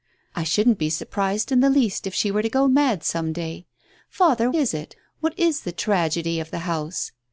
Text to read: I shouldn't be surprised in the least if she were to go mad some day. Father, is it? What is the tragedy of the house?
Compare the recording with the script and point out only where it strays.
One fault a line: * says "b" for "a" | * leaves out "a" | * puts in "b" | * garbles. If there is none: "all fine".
all fine